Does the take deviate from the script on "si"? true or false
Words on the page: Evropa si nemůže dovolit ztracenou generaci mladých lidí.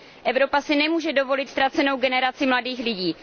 false